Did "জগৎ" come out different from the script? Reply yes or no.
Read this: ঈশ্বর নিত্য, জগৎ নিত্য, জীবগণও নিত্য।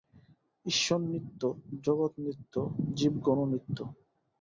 no